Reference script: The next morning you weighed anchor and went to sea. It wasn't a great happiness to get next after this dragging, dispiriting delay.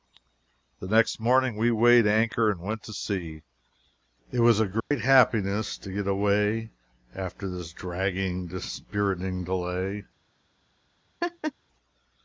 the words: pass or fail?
fail